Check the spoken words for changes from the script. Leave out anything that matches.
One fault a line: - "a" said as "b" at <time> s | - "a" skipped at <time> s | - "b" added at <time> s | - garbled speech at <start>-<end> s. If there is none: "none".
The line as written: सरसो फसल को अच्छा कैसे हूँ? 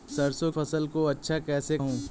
none